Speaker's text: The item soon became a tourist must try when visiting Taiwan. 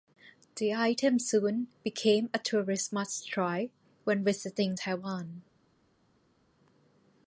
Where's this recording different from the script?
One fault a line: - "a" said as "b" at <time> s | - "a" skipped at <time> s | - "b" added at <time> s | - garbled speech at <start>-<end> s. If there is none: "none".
none